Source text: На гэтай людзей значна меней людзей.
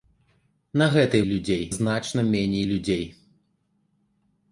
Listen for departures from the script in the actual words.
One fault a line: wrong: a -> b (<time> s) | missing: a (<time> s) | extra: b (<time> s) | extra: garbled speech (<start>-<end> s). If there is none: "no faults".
no faults